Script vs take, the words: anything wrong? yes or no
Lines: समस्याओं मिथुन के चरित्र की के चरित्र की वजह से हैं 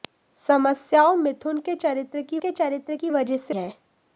no